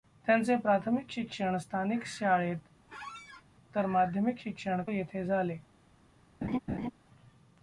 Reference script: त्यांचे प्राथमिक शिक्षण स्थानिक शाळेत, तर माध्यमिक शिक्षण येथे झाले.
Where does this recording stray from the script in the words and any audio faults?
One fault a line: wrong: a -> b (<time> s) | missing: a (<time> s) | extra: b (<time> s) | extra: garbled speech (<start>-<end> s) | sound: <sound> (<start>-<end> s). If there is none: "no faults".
sound: squeak (2.9-3.4 s)
sound: laugh (6.4-6.9 s)